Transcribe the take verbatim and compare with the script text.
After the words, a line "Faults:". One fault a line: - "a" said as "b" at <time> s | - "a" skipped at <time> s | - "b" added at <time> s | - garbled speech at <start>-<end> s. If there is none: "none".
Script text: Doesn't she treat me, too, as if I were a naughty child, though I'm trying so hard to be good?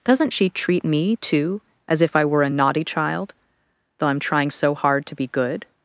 Doesn't she treat me, too, as if I were a naughty child, though I'm trying so hard to be good?
Faults:
none